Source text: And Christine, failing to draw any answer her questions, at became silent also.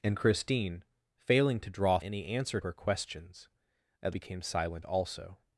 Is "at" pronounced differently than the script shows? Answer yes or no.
no